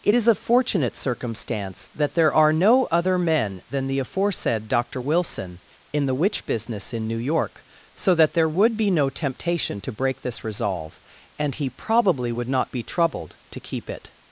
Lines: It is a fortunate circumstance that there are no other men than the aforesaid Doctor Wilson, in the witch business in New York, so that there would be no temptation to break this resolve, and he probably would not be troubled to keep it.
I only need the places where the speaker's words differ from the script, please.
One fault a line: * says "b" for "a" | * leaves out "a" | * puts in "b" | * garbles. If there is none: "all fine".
all fine